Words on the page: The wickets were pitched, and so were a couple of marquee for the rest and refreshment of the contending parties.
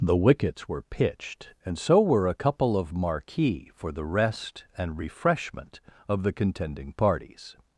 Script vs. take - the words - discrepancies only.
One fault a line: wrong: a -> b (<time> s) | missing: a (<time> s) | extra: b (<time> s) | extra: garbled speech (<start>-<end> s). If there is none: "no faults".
no faults